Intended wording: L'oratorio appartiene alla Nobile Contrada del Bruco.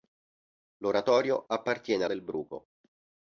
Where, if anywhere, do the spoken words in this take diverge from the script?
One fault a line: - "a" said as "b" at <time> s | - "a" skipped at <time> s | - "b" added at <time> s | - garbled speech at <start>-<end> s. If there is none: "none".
- "alla Nobile Contrada" skipped at 2.0 s